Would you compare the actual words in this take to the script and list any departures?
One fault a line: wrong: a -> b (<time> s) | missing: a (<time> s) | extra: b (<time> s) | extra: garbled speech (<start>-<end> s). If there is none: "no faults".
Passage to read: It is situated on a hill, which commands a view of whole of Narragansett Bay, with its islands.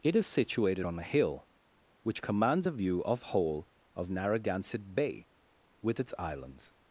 no faults